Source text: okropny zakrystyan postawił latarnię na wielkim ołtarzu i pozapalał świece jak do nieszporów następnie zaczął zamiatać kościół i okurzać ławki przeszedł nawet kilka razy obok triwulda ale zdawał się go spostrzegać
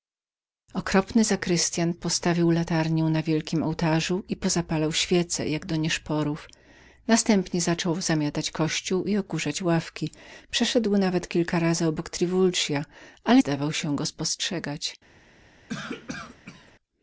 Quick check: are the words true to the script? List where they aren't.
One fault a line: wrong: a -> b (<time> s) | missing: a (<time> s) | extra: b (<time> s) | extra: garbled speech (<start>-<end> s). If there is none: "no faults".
no faults